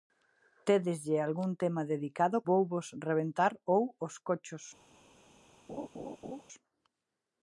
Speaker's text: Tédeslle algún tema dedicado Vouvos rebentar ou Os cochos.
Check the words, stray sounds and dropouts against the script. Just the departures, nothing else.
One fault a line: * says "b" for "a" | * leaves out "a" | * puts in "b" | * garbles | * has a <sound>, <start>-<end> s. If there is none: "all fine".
* has a laugh, 5.7-6.4 s